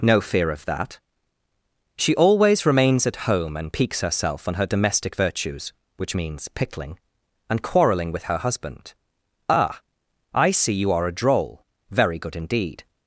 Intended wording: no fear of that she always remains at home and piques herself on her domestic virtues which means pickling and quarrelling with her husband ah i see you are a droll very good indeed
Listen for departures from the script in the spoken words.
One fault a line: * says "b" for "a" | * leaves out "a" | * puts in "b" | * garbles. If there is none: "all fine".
all fine